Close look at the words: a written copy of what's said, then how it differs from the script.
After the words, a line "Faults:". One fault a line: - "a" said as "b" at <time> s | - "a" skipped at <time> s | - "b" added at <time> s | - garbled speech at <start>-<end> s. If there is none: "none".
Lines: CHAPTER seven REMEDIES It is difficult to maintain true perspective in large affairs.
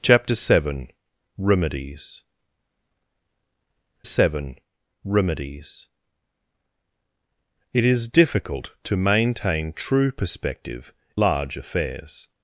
CHAPTER seven REMEDIES seven REMEDIES It is difficult to maintain true perspective large affairs.
Faults:
- "seven REMEDIES" added at 4.0 s
- "in" skipped at 10.9 s